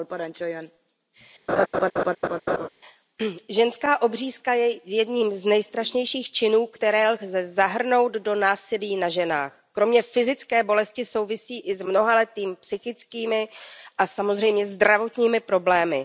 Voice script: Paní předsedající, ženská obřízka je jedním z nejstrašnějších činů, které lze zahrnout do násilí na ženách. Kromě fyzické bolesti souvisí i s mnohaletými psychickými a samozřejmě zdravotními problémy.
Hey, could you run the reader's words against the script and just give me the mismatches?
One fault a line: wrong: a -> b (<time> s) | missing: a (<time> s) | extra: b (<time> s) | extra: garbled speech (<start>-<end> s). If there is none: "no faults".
no faults